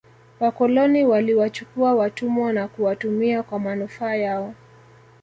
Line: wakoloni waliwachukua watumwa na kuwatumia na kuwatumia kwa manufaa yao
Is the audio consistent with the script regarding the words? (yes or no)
no